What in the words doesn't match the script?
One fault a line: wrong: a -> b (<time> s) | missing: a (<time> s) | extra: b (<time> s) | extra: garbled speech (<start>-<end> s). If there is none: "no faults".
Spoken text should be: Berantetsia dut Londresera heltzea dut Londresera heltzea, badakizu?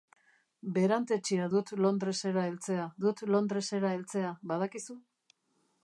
no faults